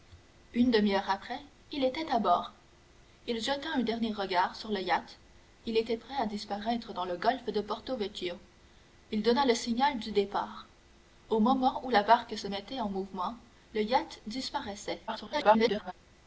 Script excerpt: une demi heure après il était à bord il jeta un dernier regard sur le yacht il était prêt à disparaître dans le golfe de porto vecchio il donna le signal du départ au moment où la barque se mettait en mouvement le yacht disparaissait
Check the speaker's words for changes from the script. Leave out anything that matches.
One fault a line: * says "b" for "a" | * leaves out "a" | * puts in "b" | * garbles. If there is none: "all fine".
* garbles